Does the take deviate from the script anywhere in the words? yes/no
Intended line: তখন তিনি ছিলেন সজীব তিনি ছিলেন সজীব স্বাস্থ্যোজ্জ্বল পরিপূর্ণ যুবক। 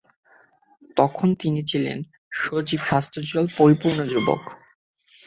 yes